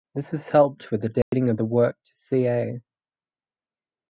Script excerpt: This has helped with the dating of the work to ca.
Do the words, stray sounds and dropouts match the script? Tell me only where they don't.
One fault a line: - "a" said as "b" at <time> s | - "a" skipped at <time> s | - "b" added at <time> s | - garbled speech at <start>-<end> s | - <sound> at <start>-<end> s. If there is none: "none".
- dropout at 1.2-1.3 s